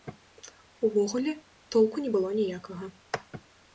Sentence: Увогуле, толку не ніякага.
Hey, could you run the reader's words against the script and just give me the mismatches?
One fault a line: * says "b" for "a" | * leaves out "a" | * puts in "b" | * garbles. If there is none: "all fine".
* puts in "было"